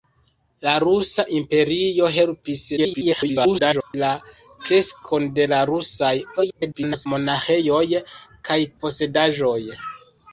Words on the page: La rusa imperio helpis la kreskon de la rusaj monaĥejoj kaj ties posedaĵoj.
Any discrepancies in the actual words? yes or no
yes